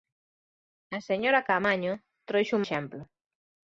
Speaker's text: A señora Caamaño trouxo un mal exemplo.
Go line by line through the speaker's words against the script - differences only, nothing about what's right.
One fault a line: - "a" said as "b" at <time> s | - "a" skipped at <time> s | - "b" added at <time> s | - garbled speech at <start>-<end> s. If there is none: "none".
- "mal" skipped at 2.6 s